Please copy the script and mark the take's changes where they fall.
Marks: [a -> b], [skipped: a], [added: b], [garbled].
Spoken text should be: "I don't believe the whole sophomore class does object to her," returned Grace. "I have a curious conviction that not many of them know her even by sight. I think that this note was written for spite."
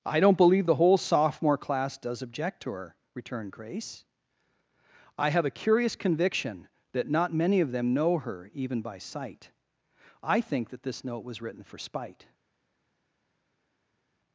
"I don't believe the whole sophomore class does object to her," returned Grace. "I have a curious conviction that not many of them know her even by sight. I think that this note was written for spite."